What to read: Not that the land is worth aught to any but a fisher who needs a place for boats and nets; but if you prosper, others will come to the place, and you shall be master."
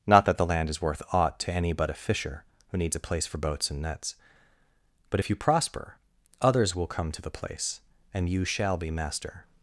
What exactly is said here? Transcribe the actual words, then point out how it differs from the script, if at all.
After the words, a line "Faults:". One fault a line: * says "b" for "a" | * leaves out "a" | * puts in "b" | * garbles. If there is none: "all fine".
Not that the land is worth aught to any but a fisher who needs a place for boats and nets; but if you prosper, others will come to the place, and you shall be master."
Faults:
all fine